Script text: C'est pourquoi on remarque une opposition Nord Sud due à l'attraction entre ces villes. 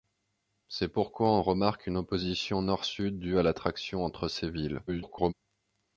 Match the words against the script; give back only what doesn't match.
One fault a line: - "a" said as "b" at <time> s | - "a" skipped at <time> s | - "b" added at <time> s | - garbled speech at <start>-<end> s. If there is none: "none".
- garbled speech at 4.9-5.3 s